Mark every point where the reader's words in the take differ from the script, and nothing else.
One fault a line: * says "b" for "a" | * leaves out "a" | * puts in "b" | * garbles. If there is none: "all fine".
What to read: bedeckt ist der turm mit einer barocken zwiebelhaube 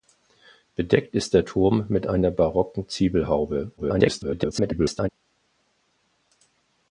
* garbles